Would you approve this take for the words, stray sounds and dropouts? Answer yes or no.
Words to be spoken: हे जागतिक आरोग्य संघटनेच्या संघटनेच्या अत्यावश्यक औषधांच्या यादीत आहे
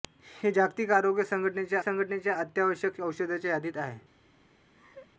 no